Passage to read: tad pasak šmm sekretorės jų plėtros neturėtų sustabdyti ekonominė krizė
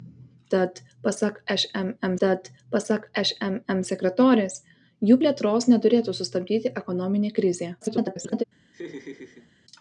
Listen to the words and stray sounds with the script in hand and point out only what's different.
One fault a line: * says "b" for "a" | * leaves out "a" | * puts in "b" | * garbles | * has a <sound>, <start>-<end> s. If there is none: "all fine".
* puts in "tad pasak šmm"
* garbles
* has a laugh, 8.7-9.5 s